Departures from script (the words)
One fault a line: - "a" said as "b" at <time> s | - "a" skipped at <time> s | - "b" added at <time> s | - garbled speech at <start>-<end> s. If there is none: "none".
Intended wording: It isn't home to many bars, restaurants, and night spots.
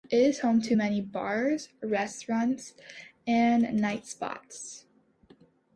- "isn't" said as "is" at 0.2 s